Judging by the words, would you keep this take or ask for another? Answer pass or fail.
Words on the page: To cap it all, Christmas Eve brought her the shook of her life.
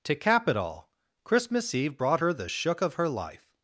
pass